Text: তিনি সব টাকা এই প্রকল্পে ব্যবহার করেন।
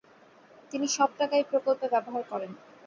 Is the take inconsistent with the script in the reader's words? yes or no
no